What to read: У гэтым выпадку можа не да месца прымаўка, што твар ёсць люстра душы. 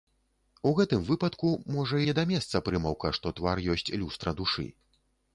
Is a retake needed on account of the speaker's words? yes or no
no